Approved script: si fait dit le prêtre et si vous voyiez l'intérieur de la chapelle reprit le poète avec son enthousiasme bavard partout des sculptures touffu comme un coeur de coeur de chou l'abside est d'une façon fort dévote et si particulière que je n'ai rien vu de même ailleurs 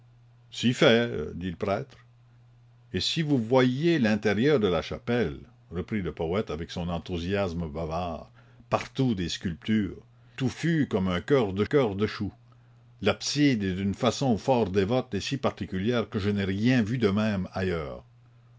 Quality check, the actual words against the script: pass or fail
pass